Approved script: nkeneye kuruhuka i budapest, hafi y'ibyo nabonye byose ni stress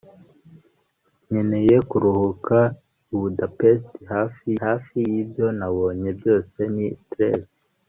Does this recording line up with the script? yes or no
no